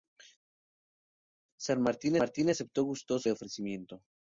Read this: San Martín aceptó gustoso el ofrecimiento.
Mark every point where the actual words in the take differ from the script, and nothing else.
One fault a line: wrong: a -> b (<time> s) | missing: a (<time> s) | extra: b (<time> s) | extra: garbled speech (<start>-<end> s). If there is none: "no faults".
extra: Martín (2.2 s)
missing: el (3.3 s)